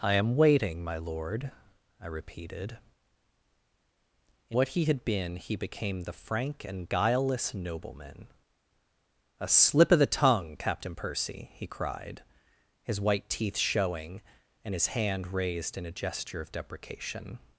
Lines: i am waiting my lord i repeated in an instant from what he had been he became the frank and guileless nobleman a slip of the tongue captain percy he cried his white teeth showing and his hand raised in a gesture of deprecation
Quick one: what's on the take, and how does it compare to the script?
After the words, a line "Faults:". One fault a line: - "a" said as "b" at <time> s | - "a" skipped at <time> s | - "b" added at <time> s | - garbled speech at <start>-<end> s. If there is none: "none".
i am waiting my lord i repeated in what he had been he became the frank and guileless nobleman a slip of the tongue captain percy he cried his white teeth showing and his hand raised in a gesture of deprecation
Faults:
- "an instant from" skipped at 4.6 s